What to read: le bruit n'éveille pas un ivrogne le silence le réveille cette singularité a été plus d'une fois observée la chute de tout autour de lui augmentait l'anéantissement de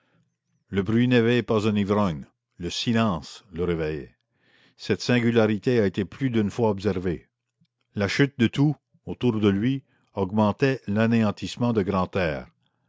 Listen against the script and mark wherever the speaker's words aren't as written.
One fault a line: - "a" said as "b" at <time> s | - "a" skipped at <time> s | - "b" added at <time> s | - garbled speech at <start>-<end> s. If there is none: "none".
none